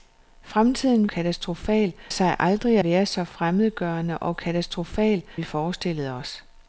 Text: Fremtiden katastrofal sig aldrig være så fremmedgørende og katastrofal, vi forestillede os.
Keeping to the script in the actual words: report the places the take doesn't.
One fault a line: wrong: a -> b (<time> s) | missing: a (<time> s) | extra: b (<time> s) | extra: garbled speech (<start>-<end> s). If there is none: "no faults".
no faults